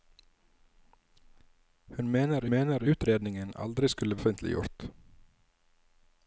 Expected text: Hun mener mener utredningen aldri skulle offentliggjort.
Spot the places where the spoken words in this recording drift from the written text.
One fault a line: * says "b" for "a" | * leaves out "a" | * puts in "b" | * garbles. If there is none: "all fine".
all fine